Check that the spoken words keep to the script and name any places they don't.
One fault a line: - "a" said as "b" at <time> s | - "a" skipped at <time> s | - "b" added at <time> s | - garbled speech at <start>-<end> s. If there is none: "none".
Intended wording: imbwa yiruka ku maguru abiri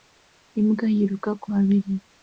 - "maguru" skipped at 1.5 s